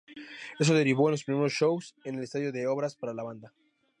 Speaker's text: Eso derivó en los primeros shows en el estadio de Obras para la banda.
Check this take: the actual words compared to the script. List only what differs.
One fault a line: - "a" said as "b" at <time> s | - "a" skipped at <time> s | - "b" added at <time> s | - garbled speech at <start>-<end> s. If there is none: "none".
none